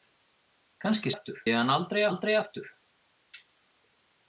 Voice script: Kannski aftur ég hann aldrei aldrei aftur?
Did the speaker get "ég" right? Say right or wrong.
right